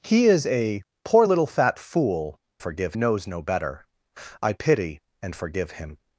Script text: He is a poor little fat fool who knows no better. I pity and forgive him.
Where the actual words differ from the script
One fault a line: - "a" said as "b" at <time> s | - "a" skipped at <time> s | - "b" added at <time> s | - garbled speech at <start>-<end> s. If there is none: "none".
- "who" said as "forgive" at 2.6 s